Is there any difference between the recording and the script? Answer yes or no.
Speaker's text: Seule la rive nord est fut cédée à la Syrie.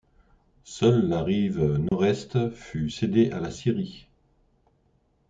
no